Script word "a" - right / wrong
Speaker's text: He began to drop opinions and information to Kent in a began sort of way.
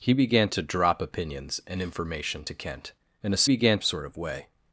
right